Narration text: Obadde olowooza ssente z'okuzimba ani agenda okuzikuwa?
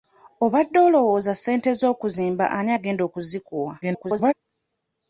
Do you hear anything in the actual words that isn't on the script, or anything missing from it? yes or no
yes